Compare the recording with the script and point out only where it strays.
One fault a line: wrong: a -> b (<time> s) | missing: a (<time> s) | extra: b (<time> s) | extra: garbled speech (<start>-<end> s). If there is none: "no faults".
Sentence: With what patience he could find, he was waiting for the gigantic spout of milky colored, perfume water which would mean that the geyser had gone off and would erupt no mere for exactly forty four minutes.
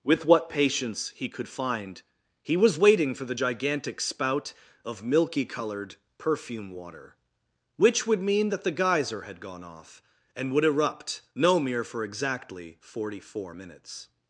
no faults